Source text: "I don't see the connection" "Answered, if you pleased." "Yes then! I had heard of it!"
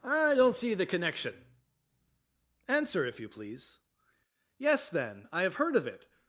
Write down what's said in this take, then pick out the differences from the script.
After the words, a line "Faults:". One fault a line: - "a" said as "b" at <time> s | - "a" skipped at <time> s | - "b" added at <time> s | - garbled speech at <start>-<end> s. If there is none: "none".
"I don't see the connection" "Answer, if you please." "Yes then! I have heard of it!"
Faults:
- "Answered" said as "Answer" at 2.7 s
- "pleased" said as "please" at 3.3 s
- "had" said as "have" at 5.4 s